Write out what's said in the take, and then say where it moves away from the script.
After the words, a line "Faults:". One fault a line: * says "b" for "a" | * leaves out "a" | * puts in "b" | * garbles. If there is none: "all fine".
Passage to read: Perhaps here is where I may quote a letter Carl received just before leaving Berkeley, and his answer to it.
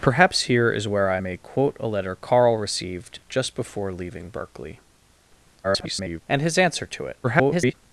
Perhaps here is where I may quote a letter Carl received just before leaving Berkeley, [garbled] and his answer to it. [garbled]
Faults:
* garbles
* garbles